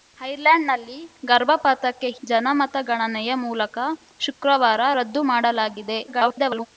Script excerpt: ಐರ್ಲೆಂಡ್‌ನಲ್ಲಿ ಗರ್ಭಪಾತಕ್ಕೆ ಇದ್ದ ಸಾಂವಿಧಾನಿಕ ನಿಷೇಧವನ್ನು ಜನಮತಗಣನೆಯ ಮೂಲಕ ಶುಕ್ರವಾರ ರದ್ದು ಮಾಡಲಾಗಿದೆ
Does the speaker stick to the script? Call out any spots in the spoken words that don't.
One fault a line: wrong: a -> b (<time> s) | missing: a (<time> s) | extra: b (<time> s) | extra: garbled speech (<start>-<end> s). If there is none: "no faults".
missing: ಇದ್ದ ಸಾಂವಿಧಾನಿಕ ನಿಷೇಧವನ್ನು (2.1 s)
extra: garbled speech (6.1-6.7 s)